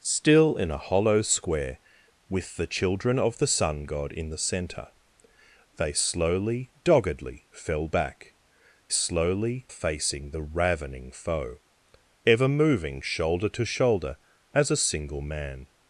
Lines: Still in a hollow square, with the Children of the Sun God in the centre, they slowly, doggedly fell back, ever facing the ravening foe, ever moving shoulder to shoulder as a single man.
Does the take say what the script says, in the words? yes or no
no